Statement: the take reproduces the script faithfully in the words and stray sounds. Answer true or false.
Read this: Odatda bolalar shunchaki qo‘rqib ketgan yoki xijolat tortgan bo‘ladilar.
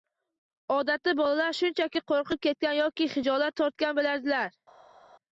true